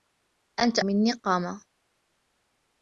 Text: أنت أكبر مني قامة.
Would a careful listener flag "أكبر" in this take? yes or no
yes